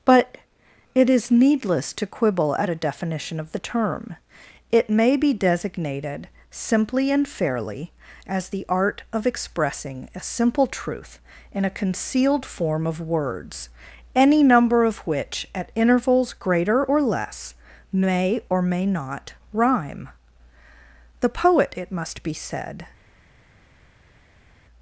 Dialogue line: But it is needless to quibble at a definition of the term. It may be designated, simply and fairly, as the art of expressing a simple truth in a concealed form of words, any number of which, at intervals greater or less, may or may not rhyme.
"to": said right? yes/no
yes